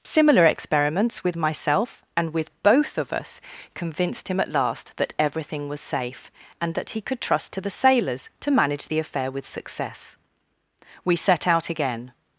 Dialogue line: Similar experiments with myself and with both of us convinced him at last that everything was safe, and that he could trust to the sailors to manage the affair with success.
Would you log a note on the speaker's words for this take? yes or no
yes